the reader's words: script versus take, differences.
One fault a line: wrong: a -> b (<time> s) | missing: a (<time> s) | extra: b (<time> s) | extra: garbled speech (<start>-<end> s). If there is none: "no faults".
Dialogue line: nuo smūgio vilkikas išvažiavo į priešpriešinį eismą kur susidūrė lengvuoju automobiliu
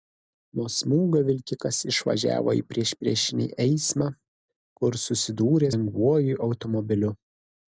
no faults